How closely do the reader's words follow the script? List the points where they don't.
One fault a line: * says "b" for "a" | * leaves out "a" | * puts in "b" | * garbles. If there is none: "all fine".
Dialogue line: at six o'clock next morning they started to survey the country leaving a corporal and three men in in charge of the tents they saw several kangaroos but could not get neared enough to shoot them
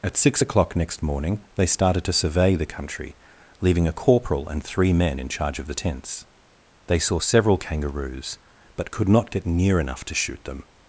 * leaves out "in"
* says "near" for "neared"